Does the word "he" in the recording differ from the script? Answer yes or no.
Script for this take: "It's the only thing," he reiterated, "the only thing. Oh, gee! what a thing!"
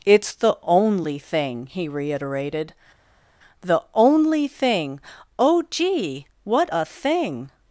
no